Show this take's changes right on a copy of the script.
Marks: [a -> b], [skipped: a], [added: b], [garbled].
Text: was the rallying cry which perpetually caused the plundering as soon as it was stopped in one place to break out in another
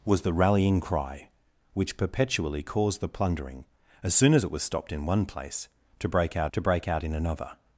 was the rallying cry which perpetually caused the plundering as soon as it was stopped in one place to break out [added: to break out] in another